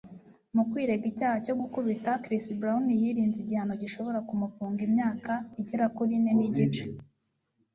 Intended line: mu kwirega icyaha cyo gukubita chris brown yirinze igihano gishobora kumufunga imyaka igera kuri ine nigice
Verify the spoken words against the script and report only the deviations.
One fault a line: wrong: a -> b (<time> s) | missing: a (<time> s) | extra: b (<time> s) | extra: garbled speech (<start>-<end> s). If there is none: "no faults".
no faults